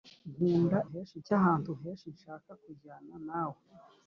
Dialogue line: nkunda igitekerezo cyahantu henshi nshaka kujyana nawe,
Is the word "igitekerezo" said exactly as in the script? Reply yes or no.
no